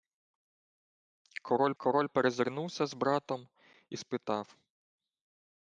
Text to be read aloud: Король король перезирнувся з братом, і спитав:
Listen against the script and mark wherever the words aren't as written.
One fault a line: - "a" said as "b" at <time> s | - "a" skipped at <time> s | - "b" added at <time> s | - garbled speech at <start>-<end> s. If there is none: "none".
none